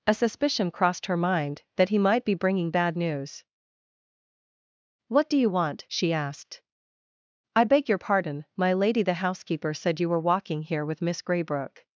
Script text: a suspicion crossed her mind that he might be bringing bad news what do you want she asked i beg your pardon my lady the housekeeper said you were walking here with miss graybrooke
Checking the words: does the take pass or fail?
pass